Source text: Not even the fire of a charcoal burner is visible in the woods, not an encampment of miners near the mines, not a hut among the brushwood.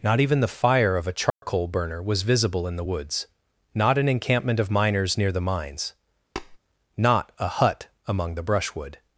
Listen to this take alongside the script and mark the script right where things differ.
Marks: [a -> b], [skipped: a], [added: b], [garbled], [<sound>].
Not even the fire of a charcoal [dropout] burner [is -> was] visible in the woods, not an encampment of miners near the mines, [tap] not a hut among the brushwood.